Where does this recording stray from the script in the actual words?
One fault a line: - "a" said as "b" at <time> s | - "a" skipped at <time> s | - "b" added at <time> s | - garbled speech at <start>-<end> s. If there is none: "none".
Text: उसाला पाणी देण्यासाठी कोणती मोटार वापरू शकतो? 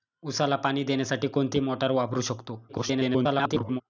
- garbled speech at 2.7-3.8 s